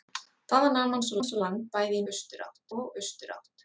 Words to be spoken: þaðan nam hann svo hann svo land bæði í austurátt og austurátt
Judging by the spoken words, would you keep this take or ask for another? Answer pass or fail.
pass